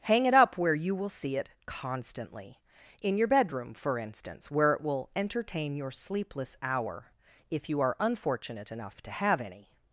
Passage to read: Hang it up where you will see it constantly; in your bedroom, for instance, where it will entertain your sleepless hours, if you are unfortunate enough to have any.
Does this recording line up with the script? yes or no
no